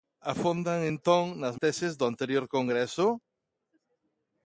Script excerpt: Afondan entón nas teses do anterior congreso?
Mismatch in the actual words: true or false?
false